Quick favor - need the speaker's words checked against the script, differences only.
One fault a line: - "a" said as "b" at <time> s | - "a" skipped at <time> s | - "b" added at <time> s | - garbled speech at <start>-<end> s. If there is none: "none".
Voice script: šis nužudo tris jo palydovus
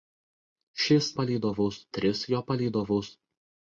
- "nužudo" said as "palydovus" at 1.2 s